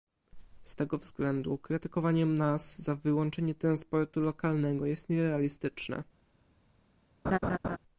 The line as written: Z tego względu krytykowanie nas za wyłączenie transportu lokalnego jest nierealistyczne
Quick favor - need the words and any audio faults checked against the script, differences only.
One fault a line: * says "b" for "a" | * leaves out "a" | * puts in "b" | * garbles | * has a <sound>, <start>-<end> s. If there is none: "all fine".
* has a laugh, 7.2-7.8 s